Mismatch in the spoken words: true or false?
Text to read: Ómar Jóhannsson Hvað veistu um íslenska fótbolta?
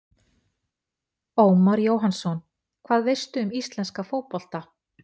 false